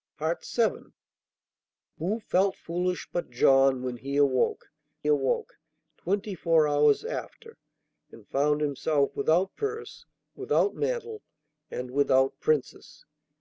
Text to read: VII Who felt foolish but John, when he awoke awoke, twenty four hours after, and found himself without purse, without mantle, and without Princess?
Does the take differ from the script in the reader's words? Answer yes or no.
no